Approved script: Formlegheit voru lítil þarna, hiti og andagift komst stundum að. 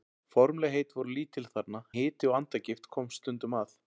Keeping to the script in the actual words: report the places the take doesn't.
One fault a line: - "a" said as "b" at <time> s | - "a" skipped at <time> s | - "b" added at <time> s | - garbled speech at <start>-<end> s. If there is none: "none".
none